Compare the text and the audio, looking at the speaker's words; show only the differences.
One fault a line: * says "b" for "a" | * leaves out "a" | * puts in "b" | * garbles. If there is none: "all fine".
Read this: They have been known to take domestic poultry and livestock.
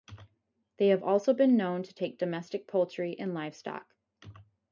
* puts in "also"